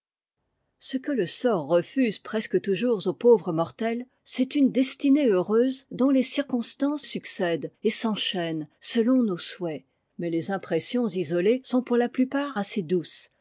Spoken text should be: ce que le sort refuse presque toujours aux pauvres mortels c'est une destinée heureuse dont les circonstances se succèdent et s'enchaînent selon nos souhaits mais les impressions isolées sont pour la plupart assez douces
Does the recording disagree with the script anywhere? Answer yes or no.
yes